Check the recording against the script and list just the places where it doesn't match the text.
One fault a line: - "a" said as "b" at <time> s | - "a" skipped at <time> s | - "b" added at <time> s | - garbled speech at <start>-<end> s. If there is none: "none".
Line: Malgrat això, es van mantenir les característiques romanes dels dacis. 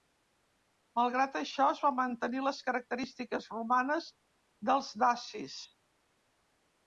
none